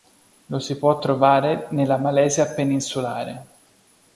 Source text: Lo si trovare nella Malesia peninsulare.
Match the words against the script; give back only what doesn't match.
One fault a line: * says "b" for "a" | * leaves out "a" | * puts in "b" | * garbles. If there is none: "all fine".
* puts in "può"